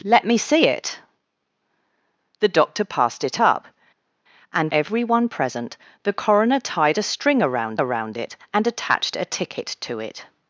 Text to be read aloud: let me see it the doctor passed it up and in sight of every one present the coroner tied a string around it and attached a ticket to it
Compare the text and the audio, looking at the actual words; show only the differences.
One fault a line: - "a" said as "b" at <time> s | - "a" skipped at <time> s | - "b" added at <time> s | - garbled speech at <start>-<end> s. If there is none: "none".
- "in sight of" skipped at 4.7 s
- "around" added at 7.8 s